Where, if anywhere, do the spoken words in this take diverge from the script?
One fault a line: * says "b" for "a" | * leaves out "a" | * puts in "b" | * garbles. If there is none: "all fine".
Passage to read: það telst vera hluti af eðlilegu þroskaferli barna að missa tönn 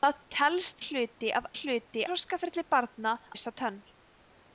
* leaves out "vera"
* says "hluti" for "eðlilegu"
* leaves out "að"